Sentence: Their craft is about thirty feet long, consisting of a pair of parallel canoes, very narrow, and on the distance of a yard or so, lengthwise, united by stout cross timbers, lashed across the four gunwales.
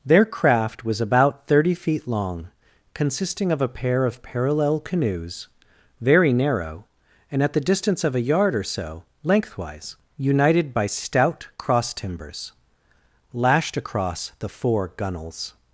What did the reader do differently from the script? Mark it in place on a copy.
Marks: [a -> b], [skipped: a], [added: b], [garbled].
Their craft [is -> was] about thirty feet long, consisting of a pair of parallel canoes, very narrow, and [on -> at] the distance of a yard or so, lengthwise, united by stout cross timbers, lashed across the four gunwales.